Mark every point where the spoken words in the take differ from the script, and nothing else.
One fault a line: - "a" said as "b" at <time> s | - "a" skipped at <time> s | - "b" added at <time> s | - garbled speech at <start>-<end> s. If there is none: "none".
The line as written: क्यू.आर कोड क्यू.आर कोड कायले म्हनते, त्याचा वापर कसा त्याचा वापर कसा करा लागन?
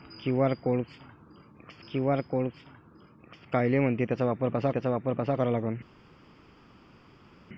none